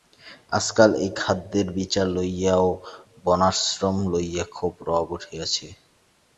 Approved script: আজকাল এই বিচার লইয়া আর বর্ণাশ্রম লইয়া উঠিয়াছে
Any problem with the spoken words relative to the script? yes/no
yes